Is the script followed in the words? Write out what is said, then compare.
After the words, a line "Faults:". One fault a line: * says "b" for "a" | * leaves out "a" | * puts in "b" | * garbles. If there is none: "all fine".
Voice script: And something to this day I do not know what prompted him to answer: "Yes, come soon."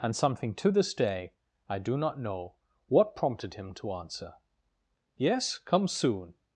And something to this day I do not know what prompted him to answer: "Yes, come soon."
Faults:
all fine